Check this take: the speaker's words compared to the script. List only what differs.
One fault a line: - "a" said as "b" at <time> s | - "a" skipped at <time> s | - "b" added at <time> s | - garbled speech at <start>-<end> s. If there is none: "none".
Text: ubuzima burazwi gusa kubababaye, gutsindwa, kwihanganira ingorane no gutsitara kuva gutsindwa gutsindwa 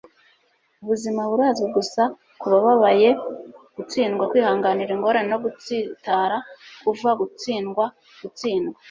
none